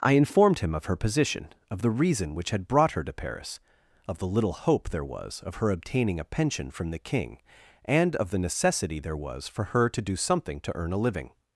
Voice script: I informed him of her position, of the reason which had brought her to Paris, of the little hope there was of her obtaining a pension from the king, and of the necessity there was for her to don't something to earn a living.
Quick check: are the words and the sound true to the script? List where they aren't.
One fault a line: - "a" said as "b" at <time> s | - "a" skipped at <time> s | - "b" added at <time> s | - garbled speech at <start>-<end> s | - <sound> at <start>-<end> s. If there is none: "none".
- "don't" said as "do" at 10.0 s